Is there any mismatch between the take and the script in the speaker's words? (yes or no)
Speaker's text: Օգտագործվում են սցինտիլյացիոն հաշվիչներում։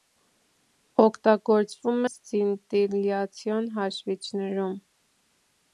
yes